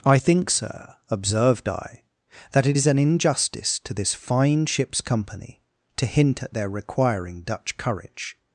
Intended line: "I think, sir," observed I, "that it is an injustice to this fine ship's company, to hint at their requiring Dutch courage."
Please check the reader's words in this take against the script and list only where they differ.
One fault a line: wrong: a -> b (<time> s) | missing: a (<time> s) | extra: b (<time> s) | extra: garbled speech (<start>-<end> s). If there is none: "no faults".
no faults